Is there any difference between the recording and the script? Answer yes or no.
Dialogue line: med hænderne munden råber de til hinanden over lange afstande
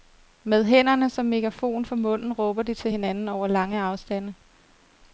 yes